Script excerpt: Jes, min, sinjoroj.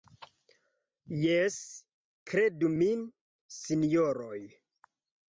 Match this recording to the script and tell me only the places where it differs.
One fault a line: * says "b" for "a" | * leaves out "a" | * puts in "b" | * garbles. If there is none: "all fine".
* puts in "kredu"